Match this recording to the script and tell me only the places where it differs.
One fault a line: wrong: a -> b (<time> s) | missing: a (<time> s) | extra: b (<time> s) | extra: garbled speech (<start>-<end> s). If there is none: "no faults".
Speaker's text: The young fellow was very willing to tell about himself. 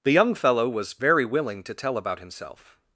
no faults